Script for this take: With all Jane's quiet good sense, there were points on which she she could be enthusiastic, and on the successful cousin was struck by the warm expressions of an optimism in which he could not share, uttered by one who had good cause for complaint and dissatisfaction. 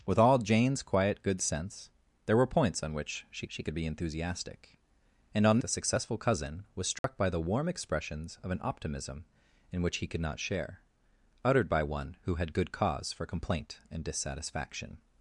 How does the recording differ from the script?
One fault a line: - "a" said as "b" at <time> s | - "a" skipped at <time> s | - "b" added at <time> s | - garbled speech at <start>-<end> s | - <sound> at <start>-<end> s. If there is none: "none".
- dropout at 7.0-7.0 s